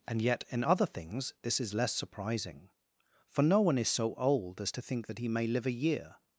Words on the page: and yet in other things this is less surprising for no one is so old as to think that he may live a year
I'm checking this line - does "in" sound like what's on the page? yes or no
yes